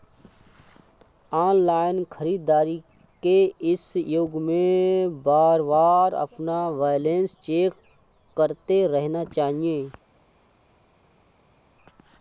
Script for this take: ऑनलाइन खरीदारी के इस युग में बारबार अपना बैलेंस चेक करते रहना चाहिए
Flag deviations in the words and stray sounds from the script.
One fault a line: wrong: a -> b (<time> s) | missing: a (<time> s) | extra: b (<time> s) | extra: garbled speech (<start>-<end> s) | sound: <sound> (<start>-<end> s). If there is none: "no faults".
no faults